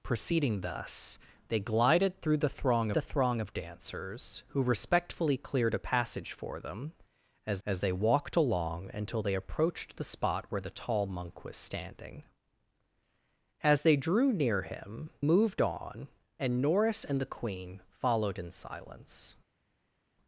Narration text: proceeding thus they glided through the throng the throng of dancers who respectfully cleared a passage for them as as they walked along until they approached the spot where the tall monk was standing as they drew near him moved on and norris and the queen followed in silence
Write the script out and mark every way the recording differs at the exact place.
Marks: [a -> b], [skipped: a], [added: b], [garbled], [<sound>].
proceeding thus they glided through the throng the throng of dancers who respectfully cleared a passage for them as as they walked along until they approached the spot where the tall monk was standing as they drew near him moved on and norris and the queen followed in silence